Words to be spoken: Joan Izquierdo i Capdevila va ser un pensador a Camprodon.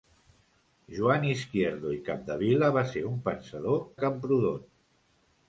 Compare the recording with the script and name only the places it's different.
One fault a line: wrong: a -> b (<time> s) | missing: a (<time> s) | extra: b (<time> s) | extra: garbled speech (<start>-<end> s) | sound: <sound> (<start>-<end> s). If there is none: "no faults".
no faults